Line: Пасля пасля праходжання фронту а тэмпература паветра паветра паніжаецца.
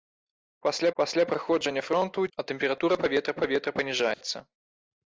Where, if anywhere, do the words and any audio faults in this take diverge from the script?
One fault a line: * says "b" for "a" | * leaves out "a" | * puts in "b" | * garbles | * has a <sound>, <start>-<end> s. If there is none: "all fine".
* has a dropout, 4.1-4.2 s